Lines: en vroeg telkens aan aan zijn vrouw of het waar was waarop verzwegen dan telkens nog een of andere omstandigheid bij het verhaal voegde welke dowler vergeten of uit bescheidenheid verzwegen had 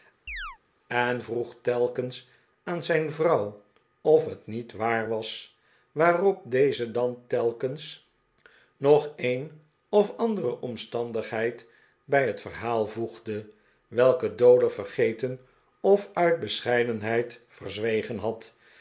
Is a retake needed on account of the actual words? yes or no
yes